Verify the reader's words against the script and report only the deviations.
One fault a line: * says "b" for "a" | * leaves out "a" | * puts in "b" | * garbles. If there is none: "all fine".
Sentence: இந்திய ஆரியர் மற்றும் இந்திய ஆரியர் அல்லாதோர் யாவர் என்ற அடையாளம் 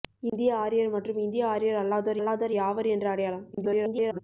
* puts in "அல்லாதோர்"
* garbles